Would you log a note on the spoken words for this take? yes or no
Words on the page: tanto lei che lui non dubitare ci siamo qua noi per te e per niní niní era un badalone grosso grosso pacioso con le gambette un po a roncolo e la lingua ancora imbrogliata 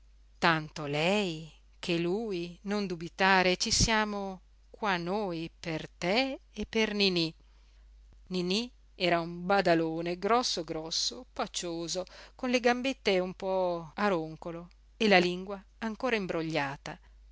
no